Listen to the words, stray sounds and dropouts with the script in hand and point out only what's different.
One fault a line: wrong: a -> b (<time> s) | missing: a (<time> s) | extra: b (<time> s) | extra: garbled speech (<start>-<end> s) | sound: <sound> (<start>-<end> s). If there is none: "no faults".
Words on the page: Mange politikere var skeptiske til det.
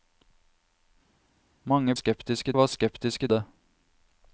wrong: politikere -> skeptiske (1.9 s)
missing: til (3.3 s)